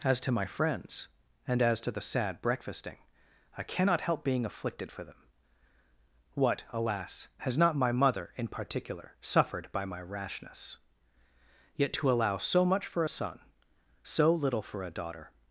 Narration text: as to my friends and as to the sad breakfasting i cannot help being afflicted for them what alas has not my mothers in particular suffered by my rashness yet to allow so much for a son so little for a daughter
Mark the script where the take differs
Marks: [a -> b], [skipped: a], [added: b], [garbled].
as to my friends and as to the sad breakfasting i cannot help being afflicted for them what alas has not my [mothers -> mother] in particular suffered by my rashness yet to allow so much for a son so little for a daughter